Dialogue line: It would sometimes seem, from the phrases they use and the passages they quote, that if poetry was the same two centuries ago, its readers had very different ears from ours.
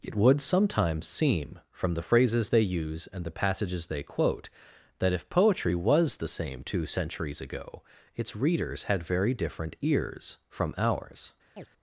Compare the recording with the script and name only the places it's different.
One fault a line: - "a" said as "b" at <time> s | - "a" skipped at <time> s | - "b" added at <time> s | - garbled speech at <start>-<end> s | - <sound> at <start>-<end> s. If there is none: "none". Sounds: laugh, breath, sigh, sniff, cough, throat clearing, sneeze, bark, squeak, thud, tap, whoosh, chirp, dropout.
- chirp at 11.6-11.7 s